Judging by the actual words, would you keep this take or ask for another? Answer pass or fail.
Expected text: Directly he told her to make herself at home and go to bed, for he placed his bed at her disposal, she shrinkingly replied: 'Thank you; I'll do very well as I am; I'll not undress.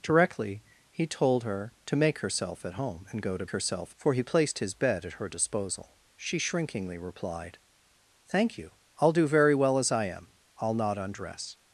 fail